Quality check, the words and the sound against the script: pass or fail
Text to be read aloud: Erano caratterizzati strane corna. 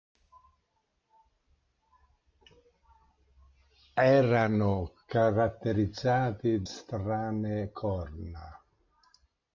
pass